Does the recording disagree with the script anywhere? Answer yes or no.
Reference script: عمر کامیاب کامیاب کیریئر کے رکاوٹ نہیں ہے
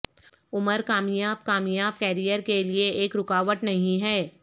yes